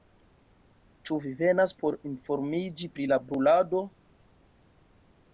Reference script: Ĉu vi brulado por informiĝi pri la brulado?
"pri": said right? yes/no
yes